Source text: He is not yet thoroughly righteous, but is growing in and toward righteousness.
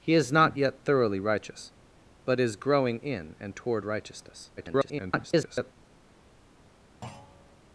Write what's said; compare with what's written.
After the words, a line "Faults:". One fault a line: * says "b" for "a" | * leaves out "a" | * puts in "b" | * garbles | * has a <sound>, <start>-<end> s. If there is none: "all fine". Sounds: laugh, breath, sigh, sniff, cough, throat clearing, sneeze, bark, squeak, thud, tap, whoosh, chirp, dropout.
He is not yet thoroughly righteous, but is growing in and toward righteousness. [garbled]
Faults:
* garbles
* has a thud, 7.0-7.6 s